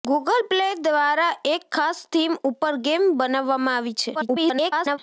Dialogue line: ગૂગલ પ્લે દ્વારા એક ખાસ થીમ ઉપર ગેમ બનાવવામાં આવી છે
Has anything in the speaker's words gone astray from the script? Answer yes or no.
yes